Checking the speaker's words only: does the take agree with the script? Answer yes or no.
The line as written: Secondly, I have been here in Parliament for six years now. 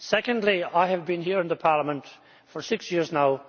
yes